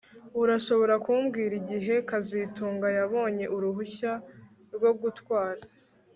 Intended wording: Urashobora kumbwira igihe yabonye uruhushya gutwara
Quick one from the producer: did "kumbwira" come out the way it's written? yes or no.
yes